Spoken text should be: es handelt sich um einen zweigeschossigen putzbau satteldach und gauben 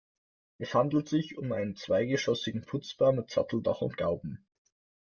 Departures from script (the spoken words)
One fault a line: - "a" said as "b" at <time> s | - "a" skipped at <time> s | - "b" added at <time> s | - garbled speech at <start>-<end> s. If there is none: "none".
- "mit" added at 3.1 s